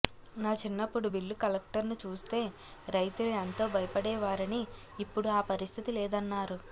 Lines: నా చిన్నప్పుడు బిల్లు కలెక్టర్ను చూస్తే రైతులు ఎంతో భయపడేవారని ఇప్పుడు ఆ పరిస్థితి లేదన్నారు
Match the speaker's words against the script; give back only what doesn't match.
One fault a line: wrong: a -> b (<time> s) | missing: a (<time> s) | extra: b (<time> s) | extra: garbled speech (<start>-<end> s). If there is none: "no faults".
no faults